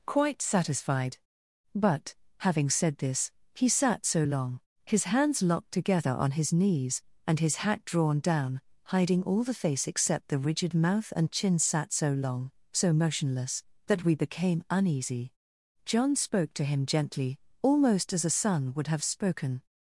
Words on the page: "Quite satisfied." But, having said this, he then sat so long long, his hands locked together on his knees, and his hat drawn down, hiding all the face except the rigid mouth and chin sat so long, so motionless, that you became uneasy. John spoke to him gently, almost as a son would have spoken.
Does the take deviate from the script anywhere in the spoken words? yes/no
yes